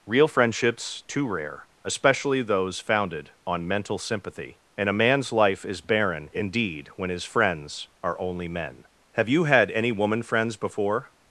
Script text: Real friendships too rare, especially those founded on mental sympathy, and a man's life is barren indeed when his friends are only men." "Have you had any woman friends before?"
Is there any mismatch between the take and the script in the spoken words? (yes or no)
no